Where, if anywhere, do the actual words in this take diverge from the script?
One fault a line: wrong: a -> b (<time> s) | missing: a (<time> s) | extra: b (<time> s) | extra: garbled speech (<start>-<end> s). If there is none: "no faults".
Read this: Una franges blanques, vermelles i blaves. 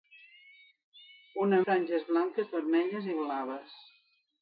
no faults